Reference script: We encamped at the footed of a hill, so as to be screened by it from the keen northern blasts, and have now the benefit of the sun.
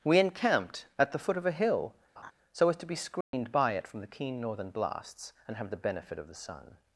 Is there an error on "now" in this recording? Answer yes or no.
yes